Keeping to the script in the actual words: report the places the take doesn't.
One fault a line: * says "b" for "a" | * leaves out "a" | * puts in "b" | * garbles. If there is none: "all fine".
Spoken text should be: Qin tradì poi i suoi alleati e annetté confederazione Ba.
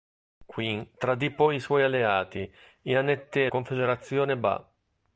all fine